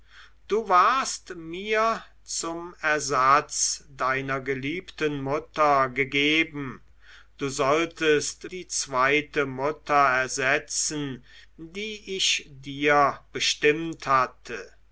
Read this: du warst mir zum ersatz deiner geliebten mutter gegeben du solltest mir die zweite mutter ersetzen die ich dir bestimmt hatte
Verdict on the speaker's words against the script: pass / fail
fail